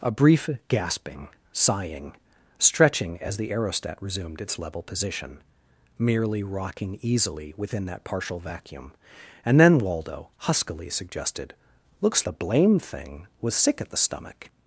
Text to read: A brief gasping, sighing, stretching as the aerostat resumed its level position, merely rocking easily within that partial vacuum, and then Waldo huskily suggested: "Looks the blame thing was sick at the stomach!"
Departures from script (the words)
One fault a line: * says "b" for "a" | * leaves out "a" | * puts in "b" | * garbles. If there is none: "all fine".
all fine